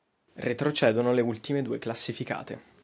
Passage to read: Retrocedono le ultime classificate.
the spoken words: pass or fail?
fail